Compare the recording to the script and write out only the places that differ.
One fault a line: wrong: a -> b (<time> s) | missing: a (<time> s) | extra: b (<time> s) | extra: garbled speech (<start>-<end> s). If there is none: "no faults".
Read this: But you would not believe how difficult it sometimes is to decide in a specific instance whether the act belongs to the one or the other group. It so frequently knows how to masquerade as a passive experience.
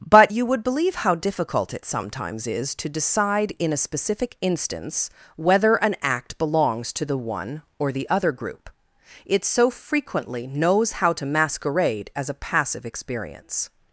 missing: not (0.6 s)
wrong: the -> an (5.7 s)